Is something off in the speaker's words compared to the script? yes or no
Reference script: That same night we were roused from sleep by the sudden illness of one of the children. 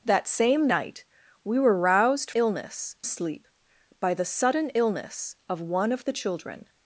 yes